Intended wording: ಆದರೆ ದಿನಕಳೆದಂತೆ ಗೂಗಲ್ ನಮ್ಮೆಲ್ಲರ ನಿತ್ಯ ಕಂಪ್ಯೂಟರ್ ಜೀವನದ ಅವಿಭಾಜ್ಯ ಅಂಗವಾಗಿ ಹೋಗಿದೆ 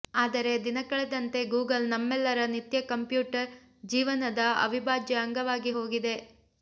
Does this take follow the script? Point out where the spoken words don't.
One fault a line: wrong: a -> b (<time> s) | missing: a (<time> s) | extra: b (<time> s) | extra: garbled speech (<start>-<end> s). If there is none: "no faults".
no faults